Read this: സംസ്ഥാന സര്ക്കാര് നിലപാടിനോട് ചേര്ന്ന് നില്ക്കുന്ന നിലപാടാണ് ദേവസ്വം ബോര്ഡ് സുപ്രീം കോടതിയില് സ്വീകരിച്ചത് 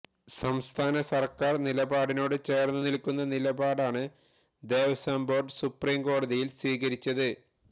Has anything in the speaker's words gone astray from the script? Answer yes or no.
no